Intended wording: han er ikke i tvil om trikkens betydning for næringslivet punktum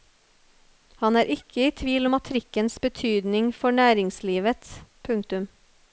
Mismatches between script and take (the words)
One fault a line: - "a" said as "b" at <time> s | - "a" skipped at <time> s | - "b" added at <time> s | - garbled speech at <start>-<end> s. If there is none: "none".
none